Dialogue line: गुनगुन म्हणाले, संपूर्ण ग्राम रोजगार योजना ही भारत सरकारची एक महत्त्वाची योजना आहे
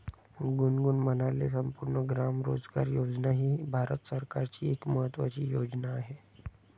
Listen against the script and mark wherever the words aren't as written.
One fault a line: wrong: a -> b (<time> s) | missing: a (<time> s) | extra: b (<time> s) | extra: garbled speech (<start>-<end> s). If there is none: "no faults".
no faults